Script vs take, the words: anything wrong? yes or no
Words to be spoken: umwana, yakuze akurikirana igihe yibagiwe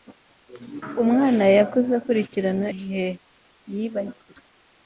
no